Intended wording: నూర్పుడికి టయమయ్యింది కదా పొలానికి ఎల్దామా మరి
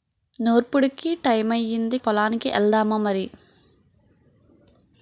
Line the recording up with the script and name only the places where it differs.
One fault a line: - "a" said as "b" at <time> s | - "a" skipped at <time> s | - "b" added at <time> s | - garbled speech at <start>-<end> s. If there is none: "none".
- "కదా" skipped at 2.0 s